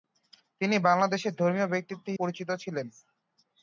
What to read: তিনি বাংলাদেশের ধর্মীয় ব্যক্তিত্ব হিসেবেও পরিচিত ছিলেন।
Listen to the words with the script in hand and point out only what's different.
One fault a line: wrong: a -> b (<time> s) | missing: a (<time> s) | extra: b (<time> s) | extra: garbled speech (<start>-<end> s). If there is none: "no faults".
missing: হিসেবেও (2.0 s)